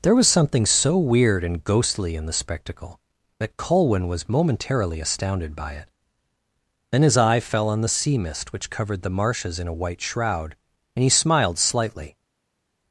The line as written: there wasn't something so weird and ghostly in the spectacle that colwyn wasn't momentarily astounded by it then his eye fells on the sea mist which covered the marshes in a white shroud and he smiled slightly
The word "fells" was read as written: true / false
false